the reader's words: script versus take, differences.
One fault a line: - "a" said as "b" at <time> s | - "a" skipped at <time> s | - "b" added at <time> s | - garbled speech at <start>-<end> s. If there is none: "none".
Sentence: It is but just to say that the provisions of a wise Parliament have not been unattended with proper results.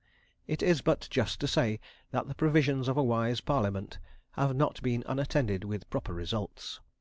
none